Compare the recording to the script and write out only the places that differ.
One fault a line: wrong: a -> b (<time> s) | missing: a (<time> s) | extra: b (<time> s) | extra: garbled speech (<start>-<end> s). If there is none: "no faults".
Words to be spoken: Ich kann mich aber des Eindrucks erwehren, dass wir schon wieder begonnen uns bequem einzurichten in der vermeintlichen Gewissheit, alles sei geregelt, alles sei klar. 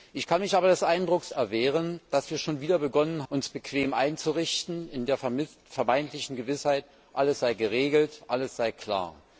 no faults